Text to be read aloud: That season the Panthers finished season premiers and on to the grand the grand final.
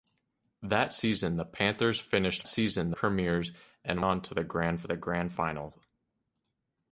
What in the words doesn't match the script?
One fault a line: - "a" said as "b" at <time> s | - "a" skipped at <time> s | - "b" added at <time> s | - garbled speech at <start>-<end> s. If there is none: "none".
none